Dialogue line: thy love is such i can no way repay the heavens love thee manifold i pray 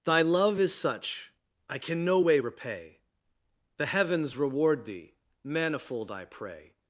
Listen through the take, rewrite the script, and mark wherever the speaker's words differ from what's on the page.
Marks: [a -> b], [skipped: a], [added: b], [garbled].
thy love is such i can no way repay the heavens [love -> reward] thee manifold i pray